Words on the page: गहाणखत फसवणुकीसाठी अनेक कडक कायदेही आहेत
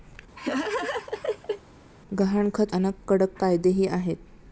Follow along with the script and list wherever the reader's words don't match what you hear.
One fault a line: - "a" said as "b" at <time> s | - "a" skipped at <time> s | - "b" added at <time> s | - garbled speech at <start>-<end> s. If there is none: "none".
- "फसवणुकीसाठी" skipped at 2.7 s